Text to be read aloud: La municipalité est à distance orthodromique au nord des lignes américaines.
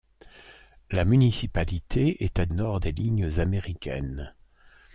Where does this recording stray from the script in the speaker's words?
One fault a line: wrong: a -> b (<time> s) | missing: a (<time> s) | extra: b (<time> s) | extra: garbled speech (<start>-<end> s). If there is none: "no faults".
missing: distance orthodromique au (2.5 s)